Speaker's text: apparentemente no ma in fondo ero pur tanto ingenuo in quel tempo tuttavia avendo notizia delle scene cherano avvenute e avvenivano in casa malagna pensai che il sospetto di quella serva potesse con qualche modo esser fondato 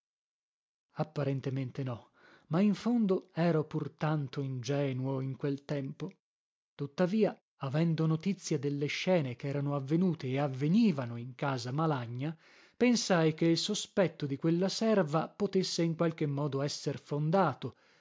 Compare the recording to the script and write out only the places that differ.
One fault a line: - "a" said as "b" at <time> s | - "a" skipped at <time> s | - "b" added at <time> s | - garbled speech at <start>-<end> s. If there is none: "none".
- "con" said as "in" at 15.8 s